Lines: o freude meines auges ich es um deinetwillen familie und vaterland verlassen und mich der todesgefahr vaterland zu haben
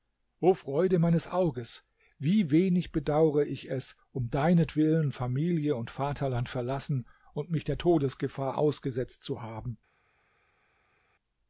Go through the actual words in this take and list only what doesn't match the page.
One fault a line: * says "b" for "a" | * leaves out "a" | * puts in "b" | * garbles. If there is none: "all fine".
* puts in "wie wenig bedaure"
* says "ausgesetzt" for "vaterland"